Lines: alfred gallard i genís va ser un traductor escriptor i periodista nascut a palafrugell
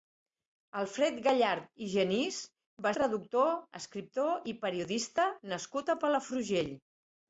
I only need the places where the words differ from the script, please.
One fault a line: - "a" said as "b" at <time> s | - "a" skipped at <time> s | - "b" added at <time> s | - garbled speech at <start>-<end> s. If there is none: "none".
- "ser un" skipped at 2.9 s